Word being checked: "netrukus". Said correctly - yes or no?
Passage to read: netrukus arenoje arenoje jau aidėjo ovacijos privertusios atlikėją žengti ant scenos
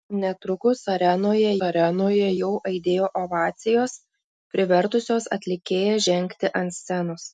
yes